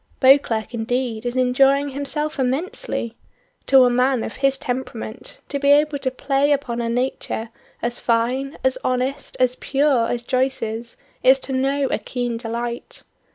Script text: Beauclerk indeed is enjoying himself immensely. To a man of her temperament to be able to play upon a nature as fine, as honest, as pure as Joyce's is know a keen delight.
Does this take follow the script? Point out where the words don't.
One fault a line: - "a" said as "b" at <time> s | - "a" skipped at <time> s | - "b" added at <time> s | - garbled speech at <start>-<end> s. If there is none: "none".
- "her" said as "his" at 4.4 s
- "to" added at 11.4 s